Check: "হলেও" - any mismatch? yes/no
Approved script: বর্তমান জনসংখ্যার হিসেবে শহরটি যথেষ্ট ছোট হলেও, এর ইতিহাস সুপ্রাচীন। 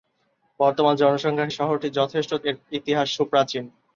yes